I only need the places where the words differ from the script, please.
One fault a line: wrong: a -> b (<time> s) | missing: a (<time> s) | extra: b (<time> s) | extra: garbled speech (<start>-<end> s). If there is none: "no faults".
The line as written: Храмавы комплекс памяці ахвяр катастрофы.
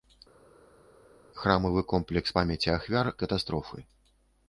no faults